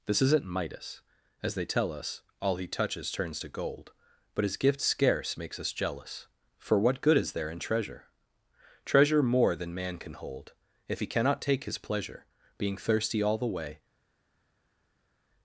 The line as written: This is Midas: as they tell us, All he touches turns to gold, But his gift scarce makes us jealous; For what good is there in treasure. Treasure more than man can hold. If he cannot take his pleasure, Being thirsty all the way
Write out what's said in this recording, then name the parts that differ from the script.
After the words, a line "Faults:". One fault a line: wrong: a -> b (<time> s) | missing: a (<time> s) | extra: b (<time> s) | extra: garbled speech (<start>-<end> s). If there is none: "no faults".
This isn't Midas: as they tell us, All he touches turns to gold, But his gift scarce makes us jealous; For what good is there in treasure. Treasure more than man can hold. If he cannot take his pleasure, Being thirsty all the way
Faults:
wrong: is -> isn't (0.2 s)